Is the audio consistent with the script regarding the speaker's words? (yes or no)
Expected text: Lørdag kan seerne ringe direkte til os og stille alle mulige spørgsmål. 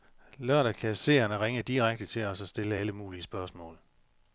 yes